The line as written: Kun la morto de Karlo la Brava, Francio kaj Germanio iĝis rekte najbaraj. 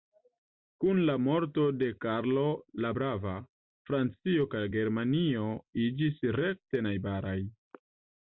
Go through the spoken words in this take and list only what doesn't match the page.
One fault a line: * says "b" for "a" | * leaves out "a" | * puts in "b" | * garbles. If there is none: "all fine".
all fine